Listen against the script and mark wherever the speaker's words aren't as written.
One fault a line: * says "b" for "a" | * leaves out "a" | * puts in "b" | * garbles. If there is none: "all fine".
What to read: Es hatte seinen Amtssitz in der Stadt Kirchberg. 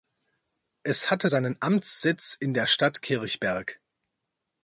all fine